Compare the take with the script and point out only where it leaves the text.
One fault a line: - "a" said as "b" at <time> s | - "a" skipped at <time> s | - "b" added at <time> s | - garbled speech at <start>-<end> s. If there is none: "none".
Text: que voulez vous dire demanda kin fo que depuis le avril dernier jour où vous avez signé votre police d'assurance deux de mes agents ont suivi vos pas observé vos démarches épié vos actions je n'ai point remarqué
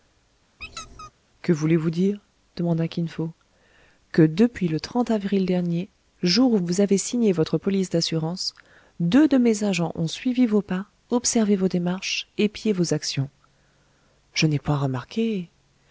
none